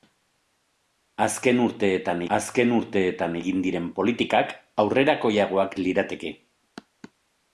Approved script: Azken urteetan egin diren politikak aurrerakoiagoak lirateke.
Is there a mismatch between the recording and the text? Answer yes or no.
yes